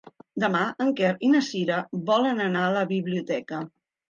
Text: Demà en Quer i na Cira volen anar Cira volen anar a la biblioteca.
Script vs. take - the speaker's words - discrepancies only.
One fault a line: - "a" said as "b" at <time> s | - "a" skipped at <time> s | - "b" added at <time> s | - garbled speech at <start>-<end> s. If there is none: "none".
- "Cira volen anar" skipped at 2.6 s